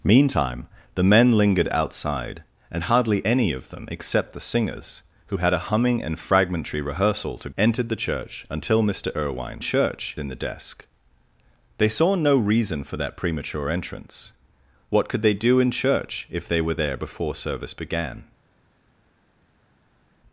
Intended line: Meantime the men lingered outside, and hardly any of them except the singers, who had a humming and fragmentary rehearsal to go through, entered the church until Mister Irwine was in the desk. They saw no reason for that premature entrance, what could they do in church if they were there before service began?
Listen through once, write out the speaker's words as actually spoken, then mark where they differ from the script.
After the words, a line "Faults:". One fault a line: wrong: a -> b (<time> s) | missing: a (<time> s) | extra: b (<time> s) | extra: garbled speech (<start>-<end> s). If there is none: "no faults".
Meantime the men lingered outside, and hardly any of them except the singers, who had a humming and fragmentary rehearsal to entered the church until Mister Irwine church in the desk. They saw no reason for that premature entrance, what could they do in church if they were there before service began?
Faults:
missing: go through (7.5 s)
wrong: was -> church (9.6 s)